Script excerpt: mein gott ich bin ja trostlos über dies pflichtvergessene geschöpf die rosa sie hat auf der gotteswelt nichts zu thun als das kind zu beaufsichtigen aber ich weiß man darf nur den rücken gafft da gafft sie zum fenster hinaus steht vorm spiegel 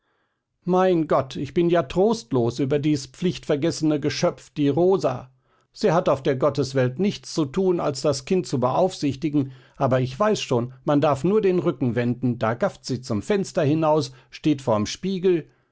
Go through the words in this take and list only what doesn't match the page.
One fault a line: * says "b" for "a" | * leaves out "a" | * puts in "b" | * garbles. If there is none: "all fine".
* puts in "schon"
* says "wenden" for "gafft"